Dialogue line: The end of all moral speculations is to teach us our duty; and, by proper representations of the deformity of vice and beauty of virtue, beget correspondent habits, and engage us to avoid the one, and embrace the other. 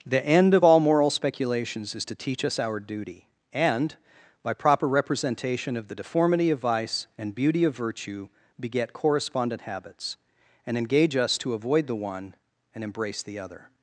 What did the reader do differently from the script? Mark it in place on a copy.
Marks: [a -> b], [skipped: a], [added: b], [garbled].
The end of all moral speculations is to teach us our duty; and, by proper [representations -> representation] of the deformity of vice and beauty of virtue, beget correspondent habits, and engage us to avoid the one, and embrace the other.